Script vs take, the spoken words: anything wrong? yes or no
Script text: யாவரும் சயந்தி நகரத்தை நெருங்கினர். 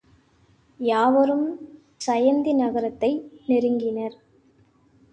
no